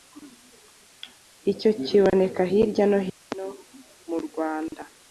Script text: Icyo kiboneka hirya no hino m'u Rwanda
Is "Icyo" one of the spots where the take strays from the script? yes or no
no